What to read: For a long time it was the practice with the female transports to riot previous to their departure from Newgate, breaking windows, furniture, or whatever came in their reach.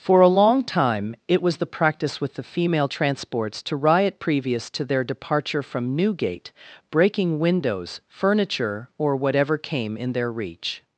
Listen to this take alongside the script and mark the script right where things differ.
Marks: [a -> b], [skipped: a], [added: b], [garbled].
For a long time it was the practice with the female transports to riot previous to their departure from Newgate, breaking windows, furniture, or whatever came in their reach.